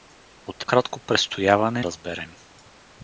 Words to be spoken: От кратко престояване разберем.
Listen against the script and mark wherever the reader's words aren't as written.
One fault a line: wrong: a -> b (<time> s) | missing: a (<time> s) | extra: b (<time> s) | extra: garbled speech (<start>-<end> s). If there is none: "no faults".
no faults